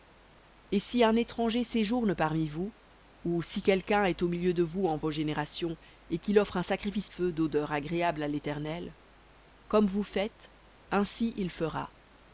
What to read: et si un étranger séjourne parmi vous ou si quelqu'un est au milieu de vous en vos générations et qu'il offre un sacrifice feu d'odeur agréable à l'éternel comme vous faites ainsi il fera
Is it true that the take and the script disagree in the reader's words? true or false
false